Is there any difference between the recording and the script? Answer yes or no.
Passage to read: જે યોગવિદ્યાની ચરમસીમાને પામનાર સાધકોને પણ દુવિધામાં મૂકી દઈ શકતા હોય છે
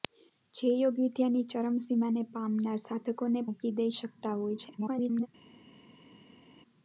yes